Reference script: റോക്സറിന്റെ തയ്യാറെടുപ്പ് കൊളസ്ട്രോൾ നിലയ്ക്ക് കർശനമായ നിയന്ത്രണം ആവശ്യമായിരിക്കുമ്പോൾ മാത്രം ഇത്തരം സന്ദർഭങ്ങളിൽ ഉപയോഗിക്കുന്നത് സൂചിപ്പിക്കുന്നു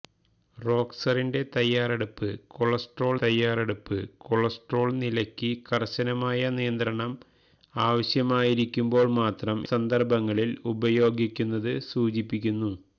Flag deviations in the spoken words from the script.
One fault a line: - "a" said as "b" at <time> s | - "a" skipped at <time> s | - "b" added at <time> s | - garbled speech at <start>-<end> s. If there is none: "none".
- "തയ്യാറെടുപ്പ് കൊളസ്ട്രോൾ" added at 3.2 s
- "ഇത്തരം" skipped at 9.6 s